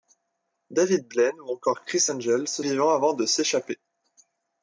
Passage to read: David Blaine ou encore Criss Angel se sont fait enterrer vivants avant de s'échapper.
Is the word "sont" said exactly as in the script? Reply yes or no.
no